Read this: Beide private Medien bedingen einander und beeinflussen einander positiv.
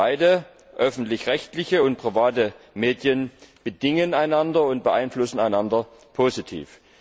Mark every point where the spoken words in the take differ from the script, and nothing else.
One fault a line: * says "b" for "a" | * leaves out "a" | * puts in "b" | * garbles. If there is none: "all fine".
* puts in "öffentlich rechtliche und"